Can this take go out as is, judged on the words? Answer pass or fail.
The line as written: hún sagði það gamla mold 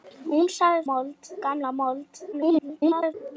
fail